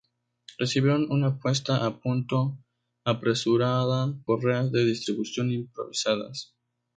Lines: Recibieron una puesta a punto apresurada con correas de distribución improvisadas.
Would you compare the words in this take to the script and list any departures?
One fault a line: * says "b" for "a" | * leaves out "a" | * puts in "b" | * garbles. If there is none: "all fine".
* leaves out "con"